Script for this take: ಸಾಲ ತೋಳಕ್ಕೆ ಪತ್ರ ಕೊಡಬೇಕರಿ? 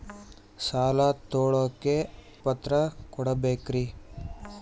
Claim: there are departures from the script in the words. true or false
false